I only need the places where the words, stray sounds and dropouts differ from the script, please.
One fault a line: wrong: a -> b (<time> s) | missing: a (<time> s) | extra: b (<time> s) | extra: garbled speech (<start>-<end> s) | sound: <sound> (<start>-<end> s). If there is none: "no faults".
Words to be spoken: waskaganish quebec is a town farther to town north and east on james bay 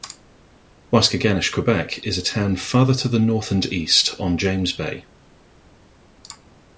wrong: town -> the (3.1 s)